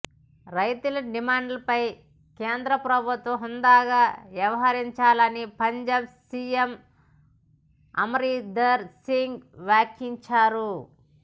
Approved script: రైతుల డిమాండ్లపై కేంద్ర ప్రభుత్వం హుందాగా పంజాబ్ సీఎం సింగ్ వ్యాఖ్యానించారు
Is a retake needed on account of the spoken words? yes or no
yes